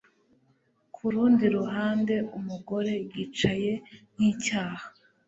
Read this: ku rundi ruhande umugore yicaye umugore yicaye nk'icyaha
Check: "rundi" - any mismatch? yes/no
no